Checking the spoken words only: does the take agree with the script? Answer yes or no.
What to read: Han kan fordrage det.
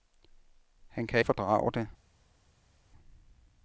yes